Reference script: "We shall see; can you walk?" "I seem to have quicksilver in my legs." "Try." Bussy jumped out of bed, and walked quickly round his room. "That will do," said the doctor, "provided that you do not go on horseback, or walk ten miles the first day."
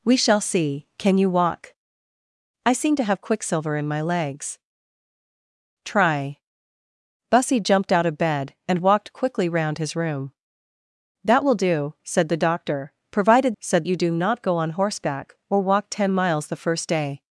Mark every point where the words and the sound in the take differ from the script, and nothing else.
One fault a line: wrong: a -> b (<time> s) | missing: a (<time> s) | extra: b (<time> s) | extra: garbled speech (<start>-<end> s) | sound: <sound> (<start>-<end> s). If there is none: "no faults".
wrong: that -> said (13.6 s)